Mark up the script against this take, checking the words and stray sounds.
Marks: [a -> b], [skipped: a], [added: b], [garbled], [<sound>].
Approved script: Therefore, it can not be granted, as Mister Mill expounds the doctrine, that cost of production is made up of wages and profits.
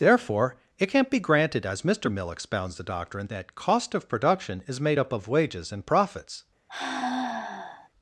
Therefore, it can not be granted, as Mister Mill expounds the doctrine, that cost of production is made up of wages and profits. [sigh]